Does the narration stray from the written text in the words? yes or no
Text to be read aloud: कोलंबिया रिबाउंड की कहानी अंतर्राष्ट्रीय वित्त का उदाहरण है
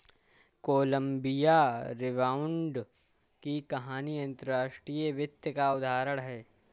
no